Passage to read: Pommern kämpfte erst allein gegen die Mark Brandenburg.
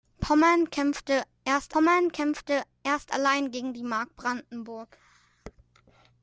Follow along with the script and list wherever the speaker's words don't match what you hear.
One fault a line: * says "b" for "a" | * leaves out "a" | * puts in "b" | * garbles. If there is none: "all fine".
* puts in "pommern kämpfte erst"